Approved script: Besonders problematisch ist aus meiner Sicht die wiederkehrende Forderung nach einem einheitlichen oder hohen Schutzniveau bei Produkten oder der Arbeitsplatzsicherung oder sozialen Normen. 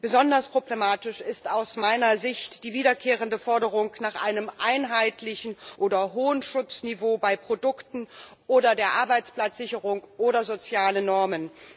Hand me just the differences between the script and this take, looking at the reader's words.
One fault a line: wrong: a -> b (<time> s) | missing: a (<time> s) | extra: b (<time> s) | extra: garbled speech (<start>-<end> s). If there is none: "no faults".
no faults